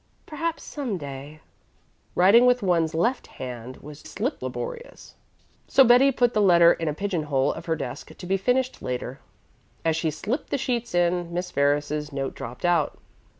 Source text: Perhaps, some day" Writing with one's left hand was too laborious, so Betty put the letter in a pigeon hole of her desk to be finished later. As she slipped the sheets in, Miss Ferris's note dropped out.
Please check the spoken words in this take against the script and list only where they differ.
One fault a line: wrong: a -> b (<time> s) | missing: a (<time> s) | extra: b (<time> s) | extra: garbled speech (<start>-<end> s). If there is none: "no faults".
wrong: too -> slipped (4.0 s)